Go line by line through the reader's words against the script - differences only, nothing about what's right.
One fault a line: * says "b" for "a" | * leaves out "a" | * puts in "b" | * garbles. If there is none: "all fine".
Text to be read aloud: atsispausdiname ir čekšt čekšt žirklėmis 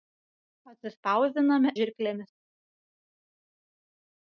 * leaves out "ir čekšt čekšt"